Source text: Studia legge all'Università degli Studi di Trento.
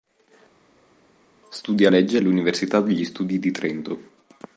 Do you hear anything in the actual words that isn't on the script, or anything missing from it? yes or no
no